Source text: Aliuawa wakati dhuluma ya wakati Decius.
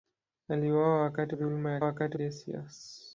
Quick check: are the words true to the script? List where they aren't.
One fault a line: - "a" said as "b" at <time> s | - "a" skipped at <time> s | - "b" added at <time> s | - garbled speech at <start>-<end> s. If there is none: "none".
none